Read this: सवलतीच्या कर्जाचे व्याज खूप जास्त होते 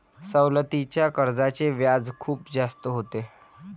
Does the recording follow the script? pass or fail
pass